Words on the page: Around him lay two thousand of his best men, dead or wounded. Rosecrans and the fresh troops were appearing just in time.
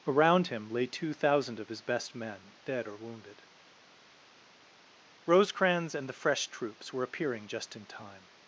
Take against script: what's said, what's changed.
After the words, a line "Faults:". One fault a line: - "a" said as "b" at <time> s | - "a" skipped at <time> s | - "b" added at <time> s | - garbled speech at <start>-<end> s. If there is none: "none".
Around him lay two thousand of his best men, dead or wounded. Rosecrans and the fresh troops were appearing just in time.
Faults:
none